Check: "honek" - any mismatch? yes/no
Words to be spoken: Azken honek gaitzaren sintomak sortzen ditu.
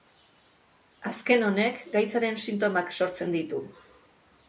no